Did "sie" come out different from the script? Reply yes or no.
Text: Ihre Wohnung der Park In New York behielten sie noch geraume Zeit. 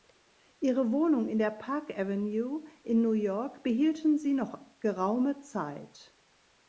no